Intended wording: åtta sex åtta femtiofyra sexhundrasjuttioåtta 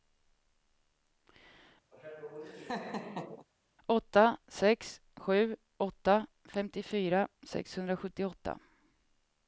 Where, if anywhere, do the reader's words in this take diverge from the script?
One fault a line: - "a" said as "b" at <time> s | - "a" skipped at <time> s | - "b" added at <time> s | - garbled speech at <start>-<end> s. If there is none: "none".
- "sju" added at 5.2 s